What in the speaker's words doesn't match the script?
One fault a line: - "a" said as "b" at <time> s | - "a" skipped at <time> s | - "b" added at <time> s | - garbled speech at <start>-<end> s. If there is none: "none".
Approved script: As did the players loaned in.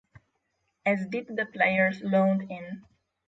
none